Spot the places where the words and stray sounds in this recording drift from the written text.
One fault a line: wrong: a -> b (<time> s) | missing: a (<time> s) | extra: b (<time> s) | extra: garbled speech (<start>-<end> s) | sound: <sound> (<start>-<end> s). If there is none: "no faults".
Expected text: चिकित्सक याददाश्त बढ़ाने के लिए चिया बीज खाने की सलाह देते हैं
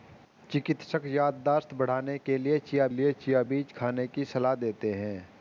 extra: लिए चिया (2.9 s)